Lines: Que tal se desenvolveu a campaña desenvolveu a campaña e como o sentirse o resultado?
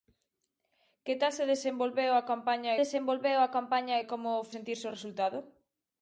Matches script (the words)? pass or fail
pass